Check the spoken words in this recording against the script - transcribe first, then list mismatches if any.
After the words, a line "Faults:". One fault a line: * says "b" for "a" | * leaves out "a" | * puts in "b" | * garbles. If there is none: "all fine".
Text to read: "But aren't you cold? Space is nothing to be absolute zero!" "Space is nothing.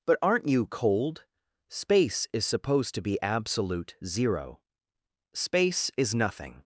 "But aren't you cold? Space is supposed to be absolute zero!" "Space is nothing.
Faults:
* says "supposed" for "nothing"